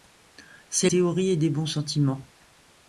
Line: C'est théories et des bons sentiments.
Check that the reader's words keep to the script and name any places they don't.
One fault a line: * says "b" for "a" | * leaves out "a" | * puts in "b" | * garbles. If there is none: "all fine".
all fine